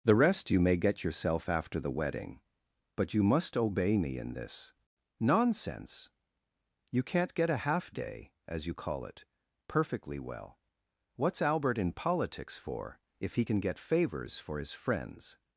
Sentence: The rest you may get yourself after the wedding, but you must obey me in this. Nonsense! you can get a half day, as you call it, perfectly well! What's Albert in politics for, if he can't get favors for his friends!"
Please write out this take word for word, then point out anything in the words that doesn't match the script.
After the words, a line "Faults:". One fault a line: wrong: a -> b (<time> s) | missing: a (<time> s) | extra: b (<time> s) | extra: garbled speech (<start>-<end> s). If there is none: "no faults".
The rest you may get yourself after the wedding, but you must obey me in this. Nonsense! you can't get a half day, as you call it, perfectly well! What's Albert in politics for, if he can get favors for his friends!"
Faults:
wrong: can -> can't (7.0 s)
wrong: can't -> can (13.4 s)